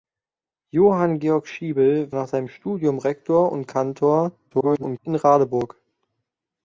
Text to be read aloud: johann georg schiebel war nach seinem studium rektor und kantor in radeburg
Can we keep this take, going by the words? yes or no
no